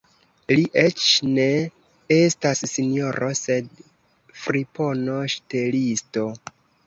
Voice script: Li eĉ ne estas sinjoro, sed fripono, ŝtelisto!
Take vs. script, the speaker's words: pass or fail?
pass